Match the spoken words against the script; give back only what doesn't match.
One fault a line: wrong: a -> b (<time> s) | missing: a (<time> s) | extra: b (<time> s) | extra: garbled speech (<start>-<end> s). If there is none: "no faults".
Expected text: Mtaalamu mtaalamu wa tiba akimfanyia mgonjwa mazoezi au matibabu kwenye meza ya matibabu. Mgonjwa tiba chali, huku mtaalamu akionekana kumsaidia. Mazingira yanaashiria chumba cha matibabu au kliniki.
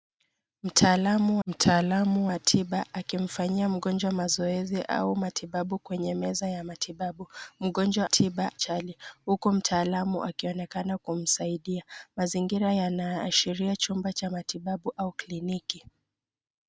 no faults